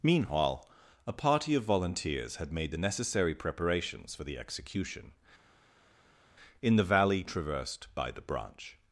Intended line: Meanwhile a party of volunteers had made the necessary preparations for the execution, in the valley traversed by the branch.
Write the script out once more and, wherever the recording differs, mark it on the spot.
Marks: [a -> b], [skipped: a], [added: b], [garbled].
Meanwhile a party of volunteers had made the necessary preparations for the execution, in the valley traversed by the branch.